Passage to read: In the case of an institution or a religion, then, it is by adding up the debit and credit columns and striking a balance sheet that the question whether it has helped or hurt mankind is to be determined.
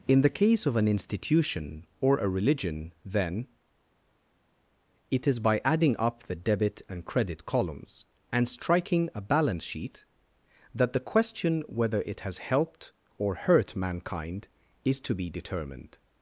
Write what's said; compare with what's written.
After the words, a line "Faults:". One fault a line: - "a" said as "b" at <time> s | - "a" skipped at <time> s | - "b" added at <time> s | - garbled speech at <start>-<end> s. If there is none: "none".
In the case of an institution or a religion, then, it is by adding up the debit and credit columns and striking a balance sheet that the question whether it has helped or hurt mankind is to be determined.
Faults:
none